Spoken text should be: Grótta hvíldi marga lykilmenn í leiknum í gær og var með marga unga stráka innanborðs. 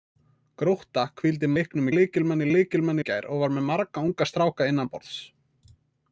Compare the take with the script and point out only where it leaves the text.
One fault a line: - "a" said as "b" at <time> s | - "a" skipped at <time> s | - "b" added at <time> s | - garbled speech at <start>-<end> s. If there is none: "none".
- "marga" said as "leiknum" at 1.6 s
- "leiknum" said as "lykilmenn" at 2.6 s